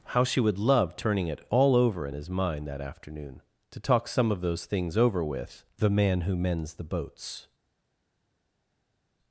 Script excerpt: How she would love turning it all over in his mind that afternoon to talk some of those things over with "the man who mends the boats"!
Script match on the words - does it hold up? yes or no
yes